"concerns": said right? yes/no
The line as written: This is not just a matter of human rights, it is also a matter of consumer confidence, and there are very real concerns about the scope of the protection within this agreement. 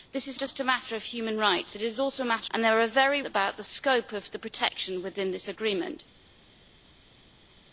no